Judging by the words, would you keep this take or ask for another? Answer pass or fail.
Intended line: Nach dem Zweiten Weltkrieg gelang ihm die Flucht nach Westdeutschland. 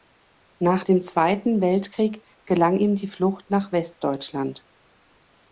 pass